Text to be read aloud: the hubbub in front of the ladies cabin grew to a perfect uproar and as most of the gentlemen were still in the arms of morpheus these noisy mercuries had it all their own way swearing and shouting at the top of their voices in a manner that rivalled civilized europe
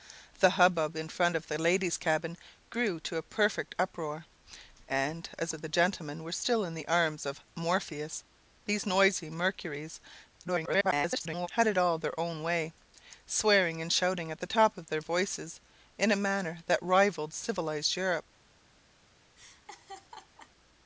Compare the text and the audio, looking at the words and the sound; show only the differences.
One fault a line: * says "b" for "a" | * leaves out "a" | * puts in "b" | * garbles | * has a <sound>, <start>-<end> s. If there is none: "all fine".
* leaves out "most"
* garbles
* has a laugh, 19.4-20.5 s